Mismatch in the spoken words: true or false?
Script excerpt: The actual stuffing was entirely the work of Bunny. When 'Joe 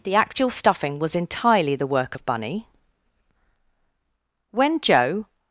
false